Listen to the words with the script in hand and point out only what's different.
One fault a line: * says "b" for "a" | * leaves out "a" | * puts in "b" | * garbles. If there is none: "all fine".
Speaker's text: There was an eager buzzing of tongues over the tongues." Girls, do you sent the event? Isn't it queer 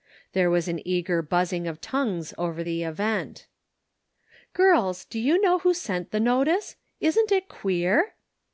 * says "event" for "tongues"
* puts in "know who"
* says "notice" for "event"